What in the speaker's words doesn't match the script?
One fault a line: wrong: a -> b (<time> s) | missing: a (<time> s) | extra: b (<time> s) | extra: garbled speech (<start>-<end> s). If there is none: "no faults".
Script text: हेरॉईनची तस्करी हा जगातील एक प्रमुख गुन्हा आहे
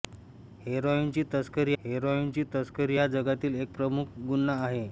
extra: हेरॉईनची तस्करी (1.8 s)